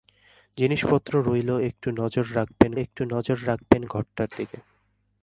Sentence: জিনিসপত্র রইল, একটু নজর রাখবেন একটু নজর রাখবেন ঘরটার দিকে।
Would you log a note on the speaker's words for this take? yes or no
no